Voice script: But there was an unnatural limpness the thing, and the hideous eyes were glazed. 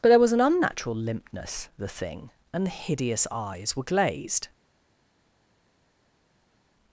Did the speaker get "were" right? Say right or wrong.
right